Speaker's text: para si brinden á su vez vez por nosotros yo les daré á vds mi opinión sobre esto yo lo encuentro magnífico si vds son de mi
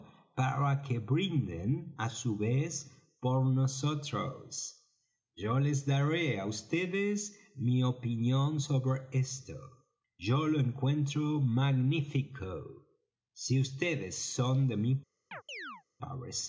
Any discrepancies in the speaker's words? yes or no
yes